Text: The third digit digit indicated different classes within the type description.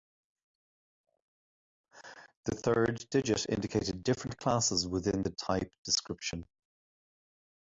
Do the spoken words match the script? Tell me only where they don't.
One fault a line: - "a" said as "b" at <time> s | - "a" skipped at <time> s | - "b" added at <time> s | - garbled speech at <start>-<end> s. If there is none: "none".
- "digit" skipped at 3.5 s